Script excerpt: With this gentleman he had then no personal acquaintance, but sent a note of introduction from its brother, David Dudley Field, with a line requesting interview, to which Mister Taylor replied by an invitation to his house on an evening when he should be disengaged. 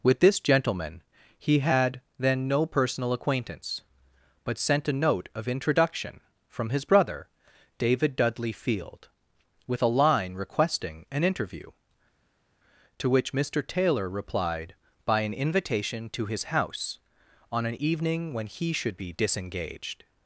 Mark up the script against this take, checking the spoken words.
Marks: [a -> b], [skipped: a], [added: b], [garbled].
With this gentleman he had then no personal acquaintance, but sent a note of introduction from [its -> his] brother, David Dudley Field, with a line requesting [added: an] interview, to which Mister Taylor replied by an invitation to his house on an evening when he should be disengaged.